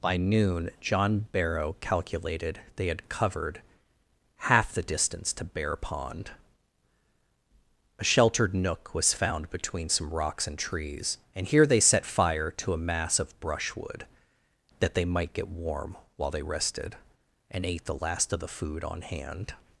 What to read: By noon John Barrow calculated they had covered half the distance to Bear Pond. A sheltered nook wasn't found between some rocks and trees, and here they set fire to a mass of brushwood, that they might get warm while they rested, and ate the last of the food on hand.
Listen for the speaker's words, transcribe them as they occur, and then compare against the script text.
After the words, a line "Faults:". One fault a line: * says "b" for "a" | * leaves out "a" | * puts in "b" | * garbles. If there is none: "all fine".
By noon John Barrow calculated they had covered half the distance to Bear Pond. A sheltered nook was found between some rocks and trees, and here they set fire to a mass of brushwood, that they might get warm while they rested, and ate the last of the food on hand.
Faults:
* says "was" for "wasn't"